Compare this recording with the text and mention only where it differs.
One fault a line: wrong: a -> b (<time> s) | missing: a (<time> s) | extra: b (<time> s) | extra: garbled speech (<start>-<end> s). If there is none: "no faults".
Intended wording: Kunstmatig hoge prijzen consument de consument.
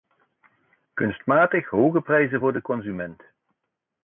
wrong: consument -> voor (2.4 s)